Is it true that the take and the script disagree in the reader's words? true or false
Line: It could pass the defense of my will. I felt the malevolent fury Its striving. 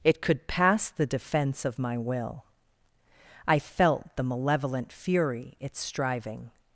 false